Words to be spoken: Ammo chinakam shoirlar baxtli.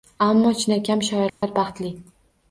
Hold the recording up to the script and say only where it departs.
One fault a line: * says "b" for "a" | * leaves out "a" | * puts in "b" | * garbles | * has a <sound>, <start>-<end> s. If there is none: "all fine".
* has a dropout, 1.3-1.4 s